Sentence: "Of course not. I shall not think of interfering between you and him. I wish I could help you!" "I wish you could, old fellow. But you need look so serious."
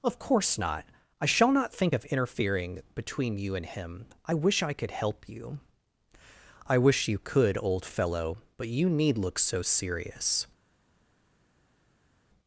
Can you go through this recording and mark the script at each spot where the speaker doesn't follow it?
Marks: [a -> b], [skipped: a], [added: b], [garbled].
"Of course not. I shall not think of interfering between you and him. I wish I could help you!" "I wish you could, old fellow. But you need look so serious."